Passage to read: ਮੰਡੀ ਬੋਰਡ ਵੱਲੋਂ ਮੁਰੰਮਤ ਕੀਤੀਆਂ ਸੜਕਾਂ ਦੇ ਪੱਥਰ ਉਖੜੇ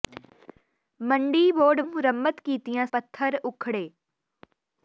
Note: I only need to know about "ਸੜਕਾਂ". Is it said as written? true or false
false